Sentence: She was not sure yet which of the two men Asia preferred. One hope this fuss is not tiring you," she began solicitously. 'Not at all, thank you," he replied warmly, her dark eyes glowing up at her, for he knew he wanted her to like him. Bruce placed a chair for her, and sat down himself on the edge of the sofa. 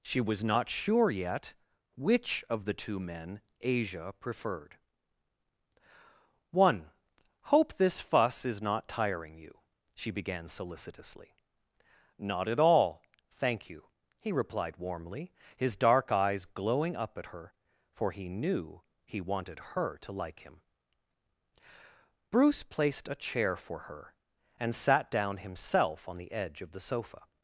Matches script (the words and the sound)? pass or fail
fail